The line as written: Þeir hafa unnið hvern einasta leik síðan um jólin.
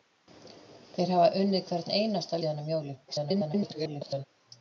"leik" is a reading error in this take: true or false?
true